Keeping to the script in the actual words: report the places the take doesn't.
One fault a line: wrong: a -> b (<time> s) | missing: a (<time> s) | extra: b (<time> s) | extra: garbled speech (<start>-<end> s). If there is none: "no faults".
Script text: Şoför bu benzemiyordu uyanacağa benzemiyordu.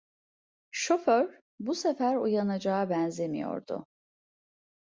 wrong: benzemiyordu -> sefer (1.8 s)